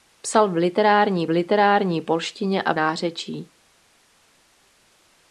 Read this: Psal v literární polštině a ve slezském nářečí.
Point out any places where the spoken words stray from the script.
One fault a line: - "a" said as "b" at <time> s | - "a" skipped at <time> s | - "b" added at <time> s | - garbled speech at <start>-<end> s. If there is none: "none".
- "literární" added at 1.3 s
- "ve slezském" skipped at 2.7 s